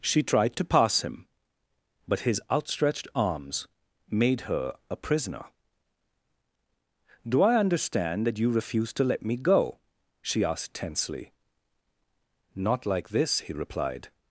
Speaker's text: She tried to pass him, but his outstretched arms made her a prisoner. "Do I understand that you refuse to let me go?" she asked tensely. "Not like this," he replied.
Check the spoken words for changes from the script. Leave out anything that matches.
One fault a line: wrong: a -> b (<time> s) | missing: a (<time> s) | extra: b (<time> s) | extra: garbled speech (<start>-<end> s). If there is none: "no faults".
no faults